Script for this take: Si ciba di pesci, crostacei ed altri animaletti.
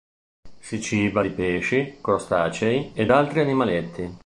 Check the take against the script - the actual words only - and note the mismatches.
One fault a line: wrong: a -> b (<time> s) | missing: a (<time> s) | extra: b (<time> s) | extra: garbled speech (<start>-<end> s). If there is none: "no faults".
no faults